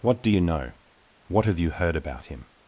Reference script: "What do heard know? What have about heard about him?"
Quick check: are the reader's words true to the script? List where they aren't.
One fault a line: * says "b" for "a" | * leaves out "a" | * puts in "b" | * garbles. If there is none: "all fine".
* says "you" for "heard"
* says "you" for "about"